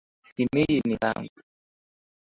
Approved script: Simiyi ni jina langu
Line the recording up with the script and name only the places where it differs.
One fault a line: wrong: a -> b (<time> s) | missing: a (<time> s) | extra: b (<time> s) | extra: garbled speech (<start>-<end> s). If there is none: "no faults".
missing: jina (1.0 s)